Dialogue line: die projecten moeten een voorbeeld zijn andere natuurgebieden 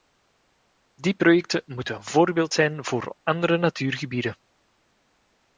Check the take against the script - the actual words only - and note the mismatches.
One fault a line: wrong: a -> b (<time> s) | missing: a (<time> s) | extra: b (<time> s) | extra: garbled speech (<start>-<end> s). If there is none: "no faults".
extra: voor (2.8 s)